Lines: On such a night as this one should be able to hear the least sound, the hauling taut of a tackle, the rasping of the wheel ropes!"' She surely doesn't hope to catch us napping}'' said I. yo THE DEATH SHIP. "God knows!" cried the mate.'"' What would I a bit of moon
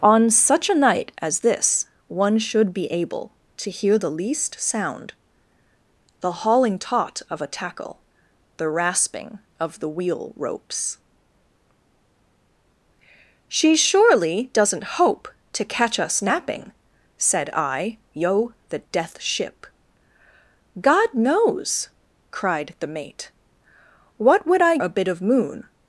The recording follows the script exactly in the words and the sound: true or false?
true